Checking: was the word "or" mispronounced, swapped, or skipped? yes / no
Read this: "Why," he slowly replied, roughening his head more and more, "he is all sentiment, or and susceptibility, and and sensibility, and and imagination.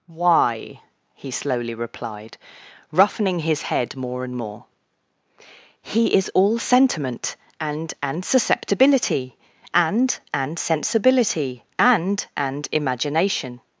yes